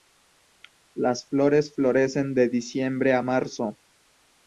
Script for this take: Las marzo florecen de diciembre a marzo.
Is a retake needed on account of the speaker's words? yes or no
yes